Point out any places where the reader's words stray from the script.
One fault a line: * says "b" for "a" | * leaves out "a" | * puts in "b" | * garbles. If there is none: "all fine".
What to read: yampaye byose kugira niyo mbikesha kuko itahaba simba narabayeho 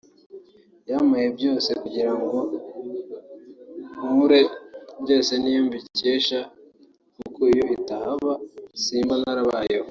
* puts in "ngo nkure byose"
* puts in "iyo"